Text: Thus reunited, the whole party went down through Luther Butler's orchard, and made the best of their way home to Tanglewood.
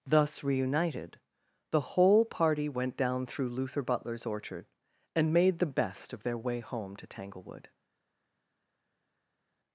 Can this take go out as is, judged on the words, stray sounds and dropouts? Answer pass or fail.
pass